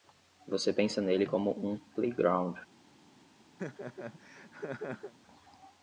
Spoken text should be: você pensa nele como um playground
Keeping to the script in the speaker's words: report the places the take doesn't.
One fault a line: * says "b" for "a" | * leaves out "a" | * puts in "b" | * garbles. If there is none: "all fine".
all fine